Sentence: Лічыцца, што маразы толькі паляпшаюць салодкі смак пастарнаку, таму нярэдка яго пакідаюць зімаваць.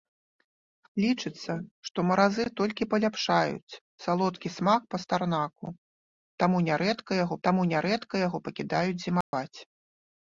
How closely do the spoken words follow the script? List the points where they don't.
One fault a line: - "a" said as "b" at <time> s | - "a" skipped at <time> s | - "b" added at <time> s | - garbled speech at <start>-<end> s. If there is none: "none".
- "таму нярэдка яго" added at 7.5 s